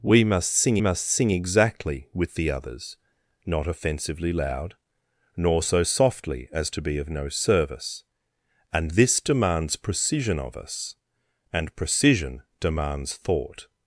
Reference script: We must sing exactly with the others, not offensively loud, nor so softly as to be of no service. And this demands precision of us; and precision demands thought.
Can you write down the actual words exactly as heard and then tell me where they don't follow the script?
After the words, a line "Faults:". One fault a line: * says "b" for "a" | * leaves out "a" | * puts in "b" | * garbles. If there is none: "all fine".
We must sing must sing exactly with the others, not offensively loud, nor so softly as to be of no service. And this demands precision of us; and precision demands thought.
Faults:
* puts in "must sing"